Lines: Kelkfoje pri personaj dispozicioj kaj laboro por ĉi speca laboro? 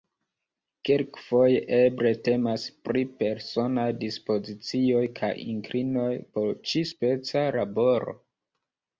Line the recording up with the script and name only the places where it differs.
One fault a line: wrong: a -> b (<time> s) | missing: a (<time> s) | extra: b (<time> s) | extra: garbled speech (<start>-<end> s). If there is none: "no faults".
extra: eble temas (1.8 s)
wrong: laboro -> inklinoj (5.5 s)